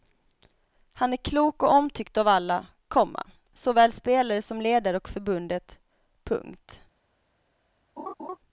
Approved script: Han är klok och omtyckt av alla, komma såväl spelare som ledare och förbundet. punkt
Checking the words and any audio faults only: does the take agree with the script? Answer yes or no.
no